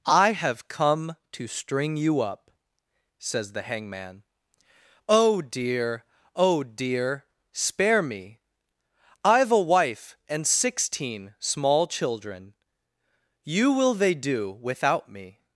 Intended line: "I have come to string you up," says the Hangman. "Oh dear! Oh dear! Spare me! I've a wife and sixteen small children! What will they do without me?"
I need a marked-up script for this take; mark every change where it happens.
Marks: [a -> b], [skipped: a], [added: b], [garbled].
"I have come to string you up," says the Hangman. "Oh dear! Oh dear! Spare me! I've a wife and sixteen small children! [What -> You] will they do without me?"